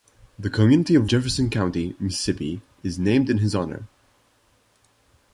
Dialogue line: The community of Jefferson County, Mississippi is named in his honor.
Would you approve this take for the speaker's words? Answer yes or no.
yes